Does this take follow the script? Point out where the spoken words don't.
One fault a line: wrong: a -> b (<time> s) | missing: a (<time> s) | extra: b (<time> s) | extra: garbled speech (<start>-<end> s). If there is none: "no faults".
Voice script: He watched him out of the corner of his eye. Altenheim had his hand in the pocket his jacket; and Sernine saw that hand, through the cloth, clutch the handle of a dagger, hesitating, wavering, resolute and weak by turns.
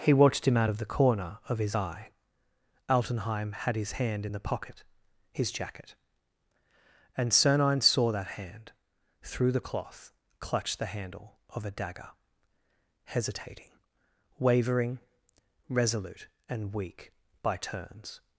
no faults